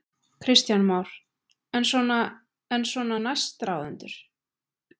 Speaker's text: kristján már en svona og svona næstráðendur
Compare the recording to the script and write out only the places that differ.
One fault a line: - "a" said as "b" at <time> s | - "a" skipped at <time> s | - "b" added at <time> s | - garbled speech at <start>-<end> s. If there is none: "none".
- "og" said as "en" at 2.7 s